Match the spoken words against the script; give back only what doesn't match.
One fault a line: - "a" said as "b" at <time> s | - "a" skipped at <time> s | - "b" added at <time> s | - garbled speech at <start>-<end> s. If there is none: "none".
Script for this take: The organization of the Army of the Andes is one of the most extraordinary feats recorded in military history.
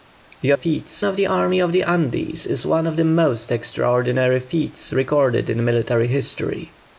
- "organization" said as "feats" at 0.5 s